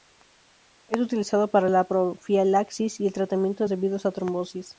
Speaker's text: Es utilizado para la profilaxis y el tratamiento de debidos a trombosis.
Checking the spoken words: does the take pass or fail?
pass